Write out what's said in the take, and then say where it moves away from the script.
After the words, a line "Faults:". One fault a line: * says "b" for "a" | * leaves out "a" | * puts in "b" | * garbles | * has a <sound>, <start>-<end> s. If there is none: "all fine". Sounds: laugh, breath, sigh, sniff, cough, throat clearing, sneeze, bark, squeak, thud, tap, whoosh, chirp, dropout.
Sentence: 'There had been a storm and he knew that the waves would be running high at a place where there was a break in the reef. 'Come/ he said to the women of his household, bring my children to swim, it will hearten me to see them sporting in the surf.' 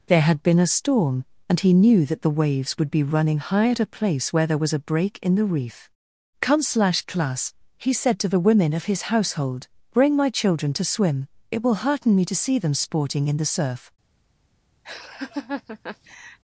'There had been a storm and he knew that the waves would be running high at a place where there was a break in the reef. 'Come/ slash class he said to the women of his household, bring my children to swim, it will hearten me to see them sporting in the surf.'
Faults:
* puts in "slash class"
* has a laugh, 14.8-16.4 s